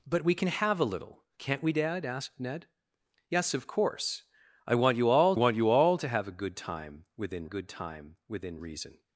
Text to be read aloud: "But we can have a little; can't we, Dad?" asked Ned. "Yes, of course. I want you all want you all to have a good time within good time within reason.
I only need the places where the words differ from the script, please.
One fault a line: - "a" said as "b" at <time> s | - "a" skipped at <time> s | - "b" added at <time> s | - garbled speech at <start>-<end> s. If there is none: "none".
none